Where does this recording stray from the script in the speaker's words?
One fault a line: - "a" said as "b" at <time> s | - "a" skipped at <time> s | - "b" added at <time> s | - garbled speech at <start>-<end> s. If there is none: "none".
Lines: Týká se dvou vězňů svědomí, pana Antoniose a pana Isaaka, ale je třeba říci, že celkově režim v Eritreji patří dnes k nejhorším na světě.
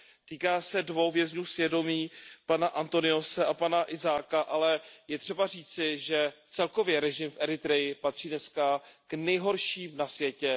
none